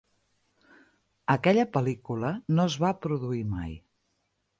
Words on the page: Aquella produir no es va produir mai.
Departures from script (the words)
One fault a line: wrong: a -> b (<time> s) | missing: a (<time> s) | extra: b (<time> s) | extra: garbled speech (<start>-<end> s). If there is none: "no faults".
wrong: produir -> pel·lícula (1.8 s)